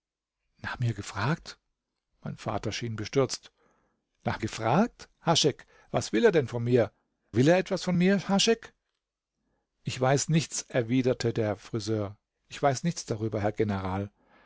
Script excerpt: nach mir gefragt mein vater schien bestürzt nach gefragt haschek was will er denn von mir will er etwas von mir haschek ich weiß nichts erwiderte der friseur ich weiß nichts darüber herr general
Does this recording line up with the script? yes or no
yes